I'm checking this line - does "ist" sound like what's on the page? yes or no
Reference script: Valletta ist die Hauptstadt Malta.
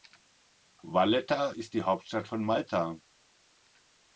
yes